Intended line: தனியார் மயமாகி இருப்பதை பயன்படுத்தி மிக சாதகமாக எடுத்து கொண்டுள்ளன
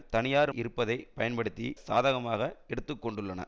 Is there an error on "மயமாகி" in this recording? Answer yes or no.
yes